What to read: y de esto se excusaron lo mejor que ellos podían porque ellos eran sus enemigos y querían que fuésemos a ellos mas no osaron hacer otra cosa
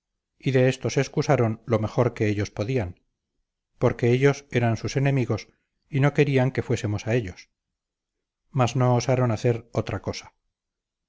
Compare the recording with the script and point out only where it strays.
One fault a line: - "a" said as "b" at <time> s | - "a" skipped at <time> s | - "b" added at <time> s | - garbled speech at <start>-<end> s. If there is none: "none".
- "no" added at 6.0 s